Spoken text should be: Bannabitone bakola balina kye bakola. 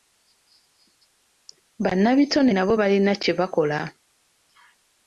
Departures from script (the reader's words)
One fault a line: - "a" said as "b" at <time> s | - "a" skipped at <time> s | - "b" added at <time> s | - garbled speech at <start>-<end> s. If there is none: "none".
- "bakola" said as "nabo" at 2.5 s